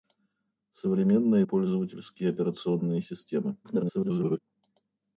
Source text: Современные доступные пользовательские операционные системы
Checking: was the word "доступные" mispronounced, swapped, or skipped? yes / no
yes